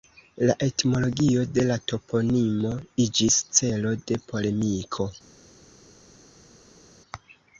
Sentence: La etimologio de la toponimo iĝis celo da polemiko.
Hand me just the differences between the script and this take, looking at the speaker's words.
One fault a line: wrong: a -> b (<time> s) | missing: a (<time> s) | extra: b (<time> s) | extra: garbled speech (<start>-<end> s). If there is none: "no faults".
wrong: da -> de (4.1 s)